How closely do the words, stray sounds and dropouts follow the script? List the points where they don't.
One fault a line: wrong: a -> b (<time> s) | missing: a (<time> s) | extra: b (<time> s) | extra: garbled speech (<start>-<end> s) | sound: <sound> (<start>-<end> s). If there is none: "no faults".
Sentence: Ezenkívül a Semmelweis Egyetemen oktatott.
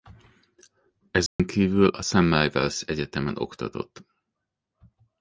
sound: dropout (1.3-1.4 s)